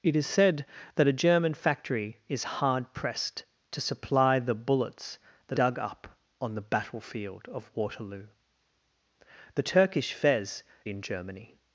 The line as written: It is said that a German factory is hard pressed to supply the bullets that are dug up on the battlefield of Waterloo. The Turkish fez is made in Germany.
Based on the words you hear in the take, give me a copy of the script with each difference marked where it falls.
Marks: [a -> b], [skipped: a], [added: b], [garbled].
It is said that a German factory is hard pressed to supply the bullets that [skipped: are] dug up on the battlefield of Waterloo. The Turkish fez [skipped: is made] in Germany.